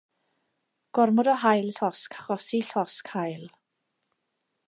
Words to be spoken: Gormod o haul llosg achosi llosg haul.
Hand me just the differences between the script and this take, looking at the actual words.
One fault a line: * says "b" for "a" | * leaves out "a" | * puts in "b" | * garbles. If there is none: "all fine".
all fine